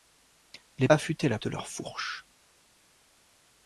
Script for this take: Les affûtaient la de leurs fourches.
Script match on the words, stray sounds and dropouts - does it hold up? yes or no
yes